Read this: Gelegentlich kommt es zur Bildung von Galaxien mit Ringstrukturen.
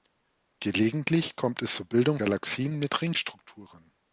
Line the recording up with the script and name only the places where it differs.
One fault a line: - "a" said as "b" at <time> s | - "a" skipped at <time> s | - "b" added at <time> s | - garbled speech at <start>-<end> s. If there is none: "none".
- "von" skipped at 2.2 s